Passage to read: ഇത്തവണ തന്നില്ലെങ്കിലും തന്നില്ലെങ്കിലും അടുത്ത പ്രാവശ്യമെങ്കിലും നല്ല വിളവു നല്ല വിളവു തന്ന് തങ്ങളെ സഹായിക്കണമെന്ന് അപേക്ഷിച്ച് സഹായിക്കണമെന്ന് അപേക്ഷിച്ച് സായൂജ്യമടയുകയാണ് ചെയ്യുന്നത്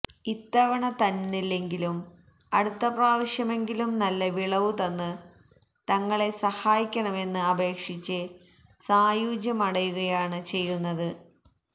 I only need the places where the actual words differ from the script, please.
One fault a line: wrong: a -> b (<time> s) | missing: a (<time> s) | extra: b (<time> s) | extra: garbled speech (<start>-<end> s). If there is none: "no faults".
missing: തന്നില്ലെങ്കിലും (2.0 s)
missing: നല്ല വിളവു (4.7 s)
missing: സഹായിക്കണമെന്ന് അപേക്ഷിച്ച് (8.2 s)